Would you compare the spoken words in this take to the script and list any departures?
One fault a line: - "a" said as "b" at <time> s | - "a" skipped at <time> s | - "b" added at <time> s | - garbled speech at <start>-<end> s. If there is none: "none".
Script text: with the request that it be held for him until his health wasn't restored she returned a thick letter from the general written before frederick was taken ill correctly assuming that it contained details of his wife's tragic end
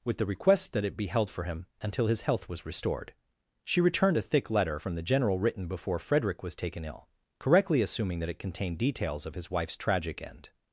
- "wasn't" said as "was" at 2.5 s